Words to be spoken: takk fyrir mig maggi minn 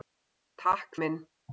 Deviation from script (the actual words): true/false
true